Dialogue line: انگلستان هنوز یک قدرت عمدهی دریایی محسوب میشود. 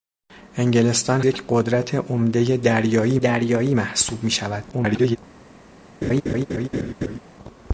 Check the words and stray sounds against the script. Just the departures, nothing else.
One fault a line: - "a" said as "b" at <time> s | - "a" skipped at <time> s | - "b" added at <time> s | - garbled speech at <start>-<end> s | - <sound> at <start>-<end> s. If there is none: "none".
- "هنوز" skipped at 1.2 s
- "دریایی" added at 3.2 s
- garbled speech at 4.7-5.2 s
- laugh at 6.0-7.2 s